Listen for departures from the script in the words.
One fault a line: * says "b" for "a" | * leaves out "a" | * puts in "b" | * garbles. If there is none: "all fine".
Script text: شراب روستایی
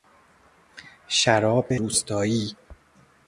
all fine